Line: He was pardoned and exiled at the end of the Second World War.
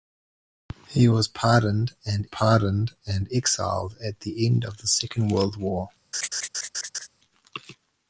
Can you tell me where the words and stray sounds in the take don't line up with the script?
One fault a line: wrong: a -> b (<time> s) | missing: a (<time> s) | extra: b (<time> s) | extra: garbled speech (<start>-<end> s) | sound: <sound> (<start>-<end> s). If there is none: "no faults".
extra: pardoned and (2.2 s)
sound: laugh (6.1-7.1 s)